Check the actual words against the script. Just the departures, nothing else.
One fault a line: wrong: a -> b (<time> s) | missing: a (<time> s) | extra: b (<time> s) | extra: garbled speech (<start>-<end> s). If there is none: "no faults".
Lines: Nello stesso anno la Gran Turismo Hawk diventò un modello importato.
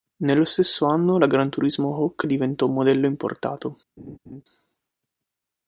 no faults